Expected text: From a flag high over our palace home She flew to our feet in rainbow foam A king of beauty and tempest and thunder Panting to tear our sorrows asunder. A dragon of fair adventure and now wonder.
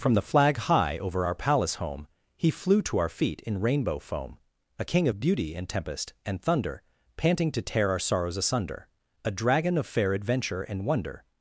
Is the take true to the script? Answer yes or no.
no